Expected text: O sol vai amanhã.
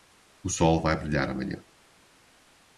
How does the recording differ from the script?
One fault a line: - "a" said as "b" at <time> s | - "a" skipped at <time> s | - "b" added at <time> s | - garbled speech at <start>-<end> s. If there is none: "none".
- "brilhar" added at 1.0 s